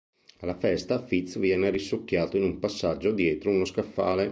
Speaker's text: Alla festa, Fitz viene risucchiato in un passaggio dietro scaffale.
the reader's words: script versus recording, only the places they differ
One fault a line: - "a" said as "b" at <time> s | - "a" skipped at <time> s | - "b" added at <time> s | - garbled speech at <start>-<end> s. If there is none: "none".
- "uno" added at 3.5 s